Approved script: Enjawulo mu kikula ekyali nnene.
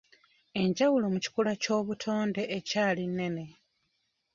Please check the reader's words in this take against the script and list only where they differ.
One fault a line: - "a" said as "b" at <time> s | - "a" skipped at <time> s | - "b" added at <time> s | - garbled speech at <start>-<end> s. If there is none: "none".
- "ky'obutonde" added at 1.6 s